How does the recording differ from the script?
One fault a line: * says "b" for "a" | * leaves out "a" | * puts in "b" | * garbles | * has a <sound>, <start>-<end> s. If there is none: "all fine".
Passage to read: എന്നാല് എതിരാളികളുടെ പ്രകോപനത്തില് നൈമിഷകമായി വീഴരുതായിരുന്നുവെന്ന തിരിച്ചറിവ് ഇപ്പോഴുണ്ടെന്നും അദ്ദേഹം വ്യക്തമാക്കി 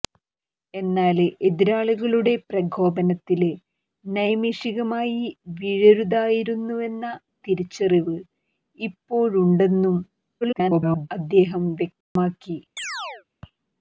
* garbles
* has a dropout, 12.0-12.2 s
* has a chirp, 12.8-13.2 s